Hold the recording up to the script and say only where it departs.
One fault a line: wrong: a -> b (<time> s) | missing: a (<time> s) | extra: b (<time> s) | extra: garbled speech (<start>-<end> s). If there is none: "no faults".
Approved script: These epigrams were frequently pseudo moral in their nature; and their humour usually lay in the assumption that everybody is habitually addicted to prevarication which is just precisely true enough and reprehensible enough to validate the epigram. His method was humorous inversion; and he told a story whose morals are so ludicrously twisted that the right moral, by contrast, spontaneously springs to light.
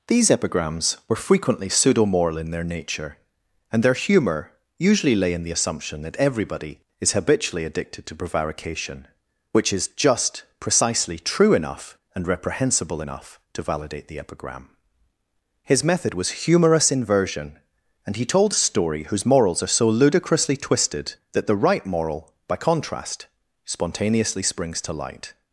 no faults